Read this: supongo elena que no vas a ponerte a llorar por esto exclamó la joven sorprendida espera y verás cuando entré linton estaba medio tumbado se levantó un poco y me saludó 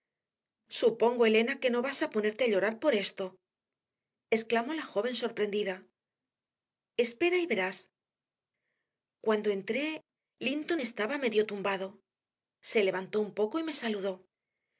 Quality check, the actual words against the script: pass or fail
pass